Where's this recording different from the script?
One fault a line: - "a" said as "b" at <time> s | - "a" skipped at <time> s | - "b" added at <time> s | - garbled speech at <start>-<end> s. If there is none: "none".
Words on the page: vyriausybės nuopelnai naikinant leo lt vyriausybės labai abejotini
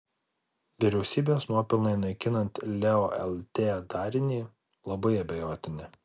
- "vyriausybės" said as "darinį" at 4.0 s